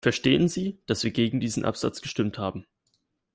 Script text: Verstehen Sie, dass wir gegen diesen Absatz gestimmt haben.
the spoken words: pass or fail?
pass